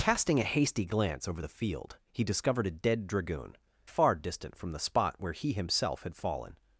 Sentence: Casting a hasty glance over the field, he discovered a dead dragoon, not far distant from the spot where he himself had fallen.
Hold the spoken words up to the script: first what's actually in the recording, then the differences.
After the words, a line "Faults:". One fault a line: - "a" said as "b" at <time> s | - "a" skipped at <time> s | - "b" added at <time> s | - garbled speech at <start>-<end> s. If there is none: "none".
Casting a hasty glance over the field, he discovered a dead dragoon, far distant from the spot where he himself had fallen.
Faults:
- "not" skipped at 3.6 s